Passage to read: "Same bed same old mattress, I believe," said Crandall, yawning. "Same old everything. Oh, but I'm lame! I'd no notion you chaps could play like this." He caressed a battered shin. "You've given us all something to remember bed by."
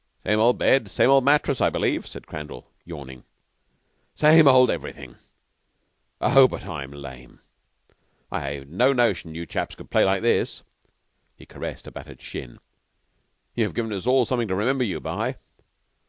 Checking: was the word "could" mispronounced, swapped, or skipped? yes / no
no